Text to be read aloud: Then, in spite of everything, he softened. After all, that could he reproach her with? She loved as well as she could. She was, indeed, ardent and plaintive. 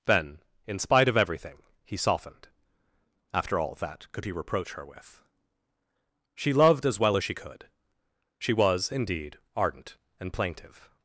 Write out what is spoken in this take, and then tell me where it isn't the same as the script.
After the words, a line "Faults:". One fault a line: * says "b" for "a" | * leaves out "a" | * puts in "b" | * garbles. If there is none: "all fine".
Then, in spite of everything, he softened. After all, that could he reproach her with? She loved as well as she could. She was, indeed, ardent and plaintive.
Faults:
all fine